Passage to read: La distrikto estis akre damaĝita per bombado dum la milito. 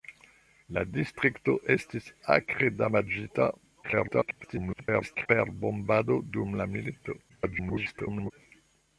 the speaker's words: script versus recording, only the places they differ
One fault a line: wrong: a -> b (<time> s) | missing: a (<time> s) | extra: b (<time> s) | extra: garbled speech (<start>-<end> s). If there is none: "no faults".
extra: garbled speech (3.8-5.3 s)
extra: garbled speech (7.3-8.3 s)